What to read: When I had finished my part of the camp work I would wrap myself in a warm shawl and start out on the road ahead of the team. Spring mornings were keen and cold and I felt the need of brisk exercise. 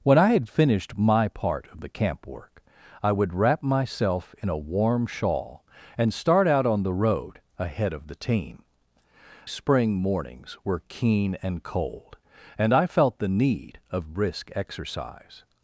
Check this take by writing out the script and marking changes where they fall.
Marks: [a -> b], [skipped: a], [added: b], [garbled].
When I had finished my part of the camp work I would wrap myself in a warm shawl and start out on the road ahead of the team. Spring mornings were keen and cold and I felt the need of brisk exercise.